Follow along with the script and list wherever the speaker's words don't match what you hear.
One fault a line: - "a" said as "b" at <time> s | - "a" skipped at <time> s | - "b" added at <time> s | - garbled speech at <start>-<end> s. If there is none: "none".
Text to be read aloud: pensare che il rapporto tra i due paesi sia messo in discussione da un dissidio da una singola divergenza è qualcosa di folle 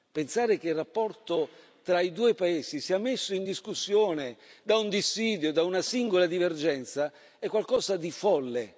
none